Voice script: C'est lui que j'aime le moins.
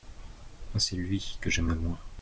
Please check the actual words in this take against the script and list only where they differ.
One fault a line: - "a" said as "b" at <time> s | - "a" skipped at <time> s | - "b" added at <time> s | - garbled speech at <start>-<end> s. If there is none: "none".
none